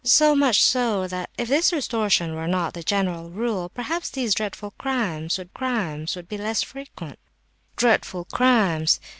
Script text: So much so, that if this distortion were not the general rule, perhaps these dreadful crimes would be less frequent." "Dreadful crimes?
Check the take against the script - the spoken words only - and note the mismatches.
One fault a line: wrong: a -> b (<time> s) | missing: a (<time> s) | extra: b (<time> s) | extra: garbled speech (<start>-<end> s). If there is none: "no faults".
extra: crimes would (5.5 s)